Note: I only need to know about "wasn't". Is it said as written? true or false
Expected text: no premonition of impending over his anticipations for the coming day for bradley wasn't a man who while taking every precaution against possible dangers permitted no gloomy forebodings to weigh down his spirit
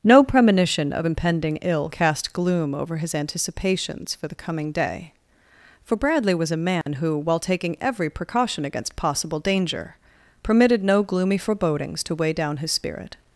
false